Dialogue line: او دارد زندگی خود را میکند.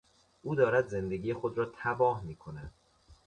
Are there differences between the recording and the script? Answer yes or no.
yes